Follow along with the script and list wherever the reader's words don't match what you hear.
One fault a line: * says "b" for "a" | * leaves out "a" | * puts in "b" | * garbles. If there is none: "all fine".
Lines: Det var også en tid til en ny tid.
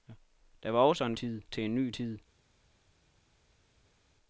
all fine